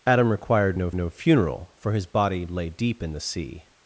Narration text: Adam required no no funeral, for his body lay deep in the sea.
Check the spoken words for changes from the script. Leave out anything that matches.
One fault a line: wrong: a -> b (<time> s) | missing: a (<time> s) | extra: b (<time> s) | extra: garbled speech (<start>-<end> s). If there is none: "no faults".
no faults